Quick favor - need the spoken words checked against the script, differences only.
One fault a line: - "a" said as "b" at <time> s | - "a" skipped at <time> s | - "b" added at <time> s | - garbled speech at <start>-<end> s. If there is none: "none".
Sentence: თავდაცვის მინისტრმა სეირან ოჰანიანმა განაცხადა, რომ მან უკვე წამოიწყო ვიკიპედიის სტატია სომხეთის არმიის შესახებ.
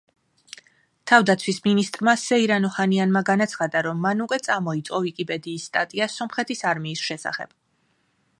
none